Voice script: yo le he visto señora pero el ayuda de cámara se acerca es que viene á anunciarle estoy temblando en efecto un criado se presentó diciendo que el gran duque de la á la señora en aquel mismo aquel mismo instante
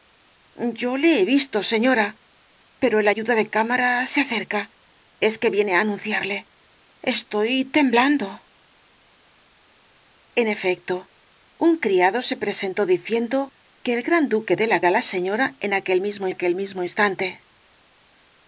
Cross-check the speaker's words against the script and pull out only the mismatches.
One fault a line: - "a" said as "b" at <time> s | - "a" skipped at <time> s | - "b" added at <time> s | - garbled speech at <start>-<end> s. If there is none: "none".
none